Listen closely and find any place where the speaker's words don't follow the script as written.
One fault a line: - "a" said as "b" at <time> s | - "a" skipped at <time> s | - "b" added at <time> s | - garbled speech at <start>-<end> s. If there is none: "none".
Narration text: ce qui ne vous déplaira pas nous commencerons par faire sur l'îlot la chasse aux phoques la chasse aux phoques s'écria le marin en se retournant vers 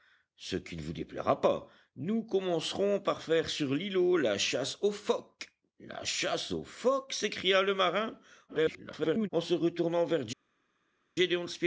- garbled speech at 8.5-9.3 s